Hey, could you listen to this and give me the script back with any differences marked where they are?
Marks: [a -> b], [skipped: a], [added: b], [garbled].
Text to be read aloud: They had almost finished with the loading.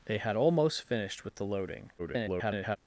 They had almost finished with the loading. [garbled]